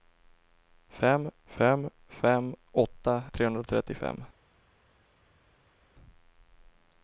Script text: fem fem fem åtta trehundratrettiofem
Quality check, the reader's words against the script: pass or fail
pass